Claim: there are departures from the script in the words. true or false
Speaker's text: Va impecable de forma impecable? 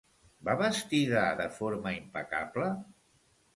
true